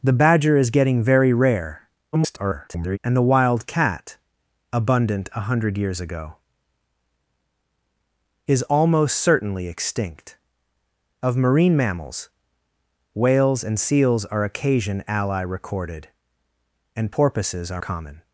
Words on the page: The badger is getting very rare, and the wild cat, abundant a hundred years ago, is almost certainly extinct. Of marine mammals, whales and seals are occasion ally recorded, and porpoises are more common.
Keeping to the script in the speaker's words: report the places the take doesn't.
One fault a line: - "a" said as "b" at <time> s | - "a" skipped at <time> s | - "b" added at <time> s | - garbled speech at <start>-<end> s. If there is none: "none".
- garbled speech at 2.1-3.0 s
- "more" skipped at 17.8 s